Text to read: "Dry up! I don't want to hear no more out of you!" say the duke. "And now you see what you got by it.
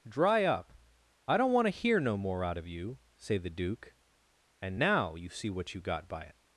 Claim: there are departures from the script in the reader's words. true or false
false